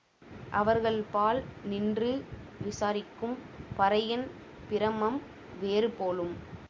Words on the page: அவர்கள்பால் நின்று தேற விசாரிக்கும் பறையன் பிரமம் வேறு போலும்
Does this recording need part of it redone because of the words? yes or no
yes